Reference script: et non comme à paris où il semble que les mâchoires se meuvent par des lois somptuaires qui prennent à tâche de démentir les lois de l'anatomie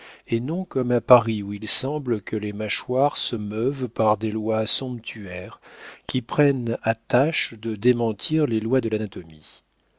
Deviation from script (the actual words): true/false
false